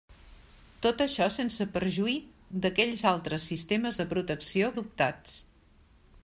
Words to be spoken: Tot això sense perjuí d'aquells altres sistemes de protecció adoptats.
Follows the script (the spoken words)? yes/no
yes